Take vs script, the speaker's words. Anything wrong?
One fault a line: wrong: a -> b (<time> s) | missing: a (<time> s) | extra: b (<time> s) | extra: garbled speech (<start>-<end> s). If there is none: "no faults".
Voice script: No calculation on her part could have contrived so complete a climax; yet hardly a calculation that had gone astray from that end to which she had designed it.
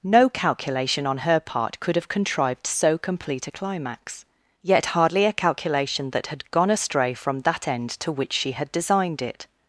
no faults